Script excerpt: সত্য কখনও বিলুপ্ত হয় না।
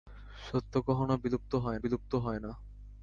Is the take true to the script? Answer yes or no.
no